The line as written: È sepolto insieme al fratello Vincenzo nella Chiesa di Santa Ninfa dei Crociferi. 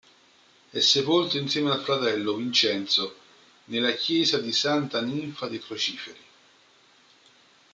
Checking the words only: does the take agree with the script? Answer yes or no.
yes